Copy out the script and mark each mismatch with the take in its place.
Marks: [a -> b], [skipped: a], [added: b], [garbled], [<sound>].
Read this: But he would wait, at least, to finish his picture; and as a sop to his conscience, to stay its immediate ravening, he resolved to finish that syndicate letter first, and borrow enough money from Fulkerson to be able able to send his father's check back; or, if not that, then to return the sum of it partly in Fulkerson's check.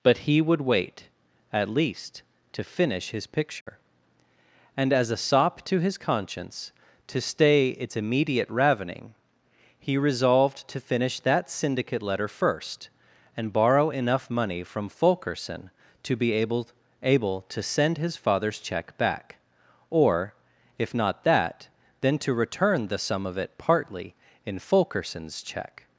But he would wait, at least, to finish his picture; [dropout] and as a sop to his conscience, to stay its immediate ravening, he resolved to finish that syndicate letter first, and borrow enough money from Fulkerson to be able able to send his father's check back; or, if not that, then to return the sum of it partly in Fulkerson's check.